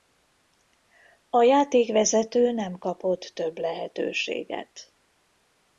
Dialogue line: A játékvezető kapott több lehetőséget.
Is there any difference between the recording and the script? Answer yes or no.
yes